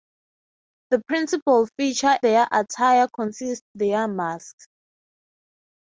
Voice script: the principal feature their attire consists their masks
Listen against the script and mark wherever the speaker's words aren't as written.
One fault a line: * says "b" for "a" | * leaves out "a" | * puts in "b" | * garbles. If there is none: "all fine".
all fine